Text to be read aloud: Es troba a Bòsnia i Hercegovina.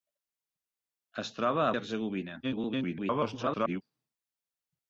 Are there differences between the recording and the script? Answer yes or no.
yes